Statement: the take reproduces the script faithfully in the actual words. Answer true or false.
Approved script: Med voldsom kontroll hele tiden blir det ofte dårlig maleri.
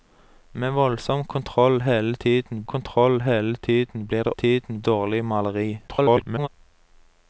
false